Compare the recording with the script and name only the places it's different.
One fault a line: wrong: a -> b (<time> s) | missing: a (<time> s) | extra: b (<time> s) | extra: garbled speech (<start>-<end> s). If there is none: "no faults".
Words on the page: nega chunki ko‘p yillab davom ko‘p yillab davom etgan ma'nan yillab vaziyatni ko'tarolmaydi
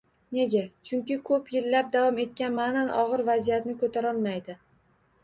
missing: ko‘p yillab davom (2.2 s)
wrong: yillab -> og‘ir (3.0 s)